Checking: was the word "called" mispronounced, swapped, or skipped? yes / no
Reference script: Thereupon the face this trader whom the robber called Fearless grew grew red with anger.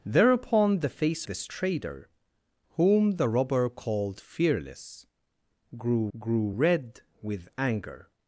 no